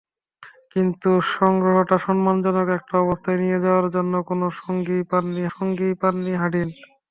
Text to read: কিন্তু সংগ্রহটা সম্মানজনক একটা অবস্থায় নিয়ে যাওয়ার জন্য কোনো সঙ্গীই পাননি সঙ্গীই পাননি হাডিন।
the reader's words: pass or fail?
pass